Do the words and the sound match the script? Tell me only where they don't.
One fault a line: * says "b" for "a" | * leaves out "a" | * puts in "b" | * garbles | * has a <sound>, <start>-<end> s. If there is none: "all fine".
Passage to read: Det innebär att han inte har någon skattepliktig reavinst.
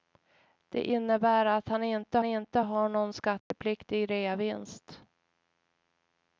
* puts in "inte"
* has a dropout, 3.4-3.5 s